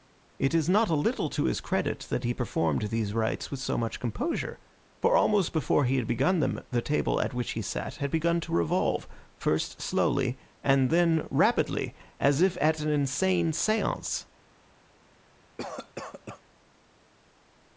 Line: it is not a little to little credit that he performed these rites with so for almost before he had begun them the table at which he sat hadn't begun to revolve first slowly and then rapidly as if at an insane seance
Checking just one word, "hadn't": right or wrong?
wrong